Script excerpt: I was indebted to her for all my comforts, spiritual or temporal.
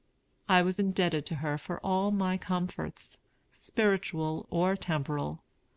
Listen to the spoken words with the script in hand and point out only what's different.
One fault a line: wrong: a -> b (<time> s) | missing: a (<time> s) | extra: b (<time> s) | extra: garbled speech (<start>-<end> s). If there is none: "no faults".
no faults